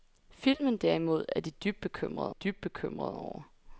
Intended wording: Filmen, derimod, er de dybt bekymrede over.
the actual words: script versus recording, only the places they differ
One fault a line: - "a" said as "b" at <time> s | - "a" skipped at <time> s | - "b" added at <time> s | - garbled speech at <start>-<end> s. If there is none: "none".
- "dybt bekymrede" added at 2.3 s